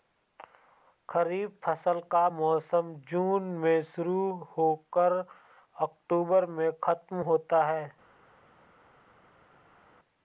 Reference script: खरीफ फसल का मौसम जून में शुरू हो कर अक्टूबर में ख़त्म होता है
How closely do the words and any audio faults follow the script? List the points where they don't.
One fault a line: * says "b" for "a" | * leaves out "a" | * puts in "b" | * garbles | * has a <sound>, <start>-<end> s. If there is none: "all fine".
all fine